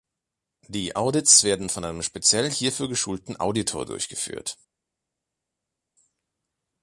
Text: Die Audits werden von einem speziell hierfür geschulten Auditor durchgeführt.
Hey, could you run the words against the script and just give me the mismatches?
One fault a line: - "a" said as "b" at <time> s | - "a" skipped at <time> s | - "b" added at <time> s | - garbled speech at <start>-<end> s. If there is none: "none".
none